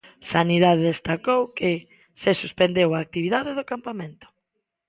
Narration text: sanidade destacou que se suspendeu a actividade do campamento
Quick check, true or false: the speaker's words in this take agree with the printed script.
true